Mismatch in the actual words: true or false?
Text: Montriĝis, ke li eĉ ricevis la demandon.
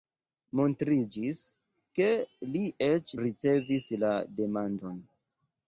false